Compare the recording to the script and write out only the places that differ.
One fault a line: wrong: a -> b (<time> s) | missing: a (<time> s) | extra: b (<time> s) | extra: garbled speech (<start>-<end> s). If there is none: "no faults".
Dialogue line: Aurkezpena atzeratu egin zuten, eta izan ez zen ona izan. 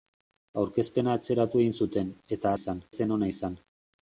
no faults